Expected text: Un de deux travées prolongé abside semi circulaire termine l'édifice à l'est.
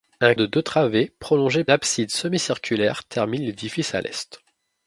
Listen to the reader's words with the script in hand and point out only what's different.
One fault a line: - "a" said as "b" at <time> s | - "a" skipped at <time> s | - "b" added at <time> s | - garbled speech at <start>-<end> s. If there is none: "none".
none